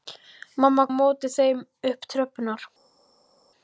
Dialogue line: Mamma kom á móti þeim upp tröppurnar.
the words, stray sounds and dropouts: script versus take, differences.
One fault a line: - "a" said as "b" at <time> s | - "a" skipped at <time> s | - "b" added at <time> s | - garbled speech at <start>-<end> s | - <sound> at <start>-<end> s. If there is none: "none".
- "kom" skipped at 0.8 s